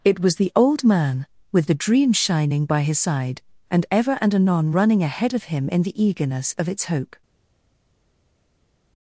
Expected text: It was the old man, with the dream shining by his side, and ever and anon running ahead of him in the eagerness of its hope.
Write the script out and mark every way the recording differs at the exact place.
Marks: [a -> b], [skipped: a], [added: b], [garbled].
It was the old man, with the dream shining by his side, and ever and anon running ahead of him in the eagerness of its hope.